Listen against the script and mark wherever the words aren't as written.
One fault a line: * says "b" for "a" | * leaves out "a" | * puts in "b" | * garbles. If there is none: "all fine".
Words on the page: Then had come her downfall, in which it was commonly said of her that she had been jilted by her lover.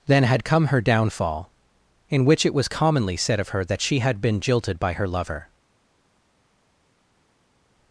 all fine